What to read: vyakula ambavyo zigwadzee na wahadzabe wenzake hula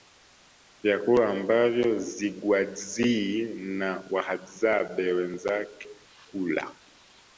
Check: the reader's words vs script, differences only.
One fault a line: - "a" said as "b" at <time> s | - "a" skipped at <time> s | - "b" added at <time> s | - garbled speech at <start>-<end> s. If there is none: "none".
none